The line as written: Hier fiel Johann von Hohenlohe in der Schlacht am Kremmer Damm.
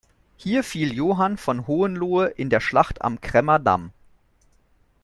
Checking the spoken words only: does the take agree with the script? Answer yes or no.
yes